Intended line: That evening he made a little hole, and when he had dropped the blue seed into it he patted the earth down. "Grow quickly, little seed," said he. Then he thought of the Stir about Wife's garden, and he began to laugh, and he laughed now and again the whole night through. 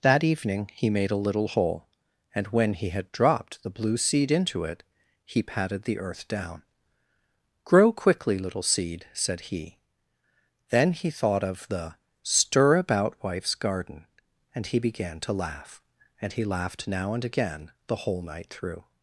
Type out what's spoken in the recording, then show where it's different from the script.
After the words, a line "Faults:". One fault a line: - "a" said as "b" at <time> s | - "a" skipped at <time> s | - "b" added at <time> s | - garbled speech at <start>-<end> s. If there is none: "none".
That evening he made a little hole, and when he had dropped the blue seed into it he patted the earth down. "Grow quickly, little seed," said he. Then he thought of the Stir about Wife's garden, and he began to laugh, and he laughed now and again the whole night through.
Faults:
none